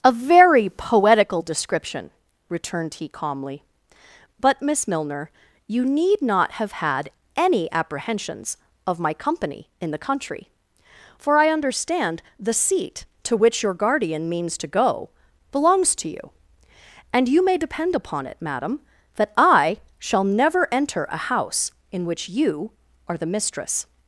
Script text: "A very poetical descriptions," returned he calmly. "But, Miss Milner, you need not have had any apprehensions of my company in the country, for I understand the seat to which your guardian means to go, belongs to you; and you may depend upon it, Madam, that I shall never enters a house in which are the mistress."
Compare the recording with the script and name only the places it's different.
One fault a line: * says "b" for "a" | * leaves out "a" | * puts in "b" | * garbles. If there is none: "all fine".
* says "description" for "descriptions"
* says "enter" for "enters"
* puts in "you"